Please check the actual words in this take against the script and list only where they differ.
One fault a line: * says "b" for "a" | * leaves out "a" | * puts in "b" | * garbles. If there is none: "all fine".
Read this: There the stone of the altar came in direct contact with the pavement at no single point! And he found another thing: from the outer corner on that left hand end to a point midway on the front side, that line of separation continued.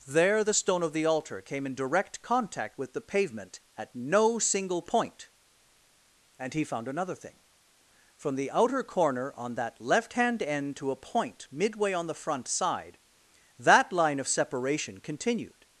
all fine